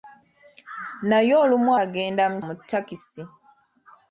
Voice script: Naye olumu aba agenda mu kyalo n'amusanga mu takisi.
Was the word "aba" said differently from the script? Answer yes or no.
yes